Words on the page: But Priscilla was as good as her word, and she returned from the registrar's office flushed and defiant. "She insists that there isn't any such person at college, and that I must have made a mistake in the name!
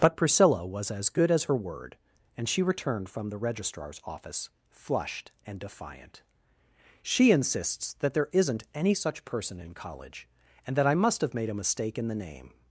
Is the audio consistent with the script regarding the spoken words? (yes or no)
no